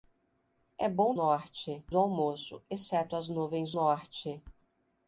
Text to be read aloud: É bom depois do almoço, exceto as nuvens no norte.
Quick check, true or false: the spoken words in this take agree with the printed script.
false